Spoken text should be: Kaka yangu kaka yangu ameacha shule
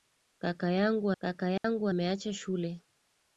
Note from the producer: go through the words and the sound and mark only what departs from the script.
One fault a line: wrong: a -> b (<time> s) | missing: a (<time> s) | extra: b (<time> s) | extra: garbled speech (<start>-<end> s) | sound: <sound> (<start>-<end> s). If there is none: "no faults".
sound: dropout (1.6-1.6 s)